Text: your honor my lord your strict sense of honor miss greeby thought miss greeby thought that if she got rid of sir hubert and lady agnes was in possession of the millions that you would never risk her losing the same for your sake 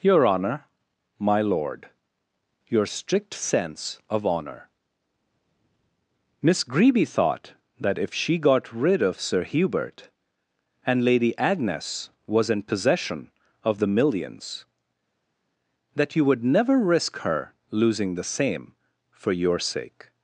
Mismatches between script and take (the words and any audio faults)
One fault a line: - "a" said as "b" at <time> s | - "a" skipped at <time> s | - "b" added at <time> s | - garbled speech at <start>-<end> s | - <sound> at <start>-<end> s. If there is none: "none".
- "miss greeby thought" skipped at 7.5 s